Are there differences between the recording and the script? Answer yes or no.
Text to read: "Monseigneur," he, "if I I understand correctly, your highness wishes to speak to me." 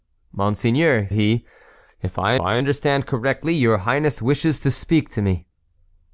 no